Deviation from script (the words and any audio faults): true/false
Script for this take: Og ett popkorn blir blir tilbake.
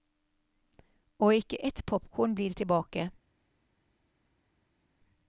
true